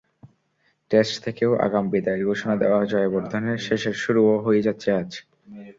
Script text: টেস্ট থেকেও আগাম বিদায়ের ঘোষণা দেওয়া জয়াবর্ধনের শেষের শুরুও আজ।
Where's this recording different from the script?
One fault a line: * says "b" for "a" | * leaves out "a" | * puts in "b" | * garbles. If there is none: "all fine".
* puts in "হয়ে যাচ্ছে"